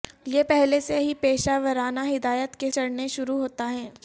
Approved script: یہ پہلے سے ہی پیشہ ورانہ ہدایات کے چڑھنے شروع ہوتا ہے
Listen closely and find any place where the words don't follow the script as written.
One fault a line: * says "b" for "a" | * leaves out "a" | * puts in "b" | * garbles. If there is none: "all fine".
all fine